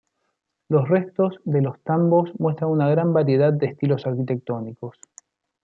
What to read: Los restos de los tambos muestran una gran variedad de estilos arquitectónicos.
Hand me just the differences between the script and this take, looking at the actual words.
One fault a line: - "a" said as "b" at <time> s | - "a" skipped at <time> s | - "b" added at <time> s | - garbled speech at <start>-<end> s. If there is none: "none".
none